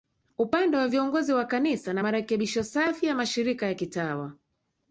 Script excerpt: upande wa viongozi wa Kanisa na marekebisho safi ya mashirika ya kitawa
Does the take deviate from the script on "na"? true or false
false